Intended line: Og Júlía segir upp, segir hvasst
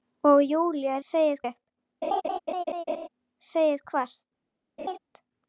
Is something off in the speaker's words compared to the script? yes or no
no